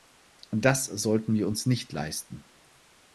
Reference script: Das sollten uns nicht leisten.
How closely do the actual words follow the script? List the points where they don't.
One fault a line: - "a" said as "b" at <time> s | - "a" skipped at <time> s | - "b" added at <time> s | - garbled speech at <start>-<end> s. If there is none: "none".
- "wir" added at 1.4 s